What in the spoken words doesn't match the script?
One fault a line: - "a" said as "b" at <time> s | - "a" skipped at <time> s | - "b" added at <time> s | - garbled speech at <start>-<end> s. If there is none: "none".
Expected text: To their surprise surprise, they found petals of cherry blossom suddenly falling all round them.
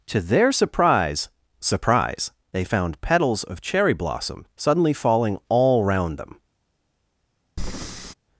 none